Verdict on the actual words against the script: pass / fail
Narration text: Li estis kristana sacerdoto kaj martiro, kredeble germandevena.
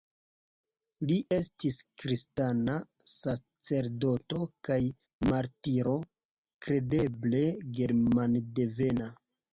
pass